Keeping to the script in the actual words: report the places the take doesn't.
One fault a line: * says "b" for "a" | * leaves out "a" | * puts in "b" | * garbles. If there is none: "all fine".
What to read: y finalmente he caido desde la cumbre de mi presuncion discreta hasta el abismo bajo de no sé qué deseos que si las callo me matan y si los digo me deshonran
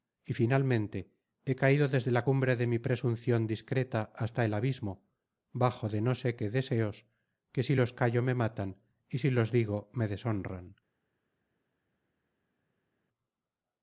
* says "los" for "las"